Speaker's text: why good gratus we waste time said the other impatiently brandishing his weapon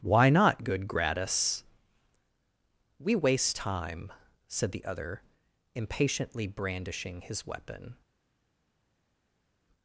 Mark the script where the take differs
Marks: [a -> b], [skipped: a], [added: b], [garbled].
why [added: not] good gratus we waste time said the other impatiently brandishing his weapon